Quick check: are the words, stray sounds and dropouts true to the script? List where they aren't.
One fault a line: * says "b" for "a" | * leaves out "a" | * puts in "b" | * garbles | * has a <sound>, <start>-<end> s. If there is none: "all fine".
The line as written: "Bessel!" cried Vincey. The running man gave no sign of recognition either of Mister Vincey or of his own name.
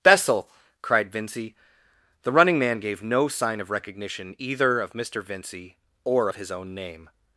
all fine